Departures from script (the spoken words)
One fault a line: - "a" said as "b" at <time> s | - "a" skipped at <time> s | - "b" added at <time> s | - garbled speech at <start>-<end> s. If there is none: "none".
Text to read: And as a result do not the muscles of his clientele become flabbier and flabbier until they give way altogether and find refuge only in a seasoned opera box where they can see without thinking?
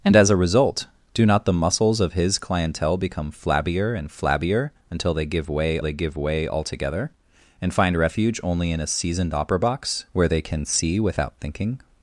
- "they give way" added at 5.8 s